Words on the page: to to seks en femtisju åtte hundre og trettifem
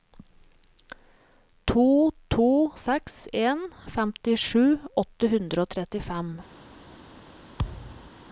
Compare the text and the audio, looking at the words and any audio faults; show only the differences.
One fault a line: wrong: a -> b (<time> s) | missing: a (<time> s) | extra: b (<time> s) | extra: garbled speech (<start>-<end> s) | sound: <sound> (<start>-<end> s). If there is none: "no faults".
sound: thud (7.6-8.1 s)